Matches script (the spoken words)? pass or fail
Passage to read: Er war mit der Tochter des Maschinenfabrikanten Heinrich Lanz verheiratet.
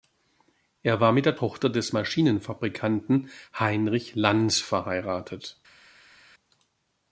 pass